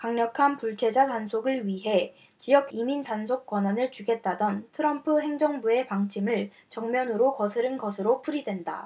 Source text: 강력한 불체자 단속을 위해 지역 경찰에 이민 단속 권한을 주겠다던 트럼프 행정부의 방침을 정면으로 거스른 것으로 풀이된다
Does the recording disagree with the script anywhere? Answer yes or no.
yes